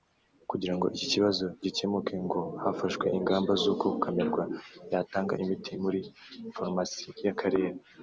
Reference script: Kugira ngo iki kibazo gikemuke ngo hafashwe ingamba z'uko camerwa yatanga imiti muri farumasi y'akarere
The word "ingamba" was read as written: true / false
true